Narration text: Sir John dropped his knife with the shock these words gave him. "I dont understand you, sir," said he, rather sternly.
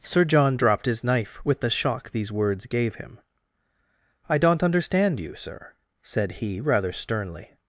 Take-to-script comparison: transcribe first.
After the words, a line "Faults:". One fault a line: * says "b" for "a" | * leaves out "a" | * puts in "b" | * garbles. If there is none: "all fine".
Sir John dropped his knife with the shock these words gave him. "I dont understand you, sir," said he, rather sternly.
Faults:
all fine